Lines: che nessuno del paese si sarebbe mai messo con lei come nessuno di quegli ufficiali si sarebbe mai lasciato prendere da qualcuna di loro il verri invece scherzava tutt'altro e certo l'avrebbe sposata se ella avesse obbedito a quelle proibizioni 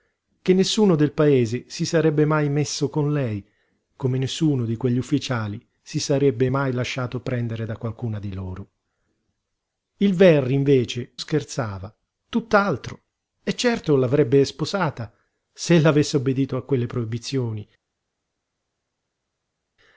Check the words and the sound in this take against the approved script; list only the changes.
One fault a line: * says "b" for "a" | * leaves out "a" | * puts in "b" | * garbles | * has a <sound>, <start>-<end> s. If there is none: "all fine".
all fine